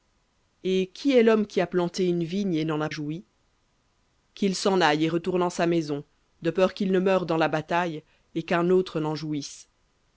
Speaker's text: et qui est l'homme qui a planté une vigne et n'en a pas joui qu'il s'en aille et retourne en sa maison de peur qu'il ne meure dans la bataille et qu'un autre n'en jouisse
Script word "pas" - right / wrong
wrong